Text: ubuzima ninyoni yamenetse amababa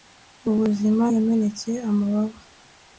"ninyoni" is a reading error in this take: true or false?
true